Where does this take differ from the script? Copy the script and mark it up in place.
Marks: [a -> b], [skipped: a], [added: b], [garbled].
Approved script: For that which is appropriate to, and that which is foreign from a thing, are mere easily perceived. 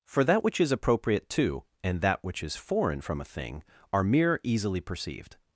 For that which is appropriate to, and that which is foreign from a thing, are mere easily perceived.